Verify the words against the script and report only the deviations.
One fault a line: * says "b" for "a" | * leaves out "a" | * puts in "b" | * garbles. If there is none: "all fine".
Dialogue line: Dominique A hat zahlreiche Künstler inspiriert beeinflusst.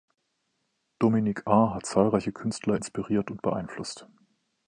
* puts in "und"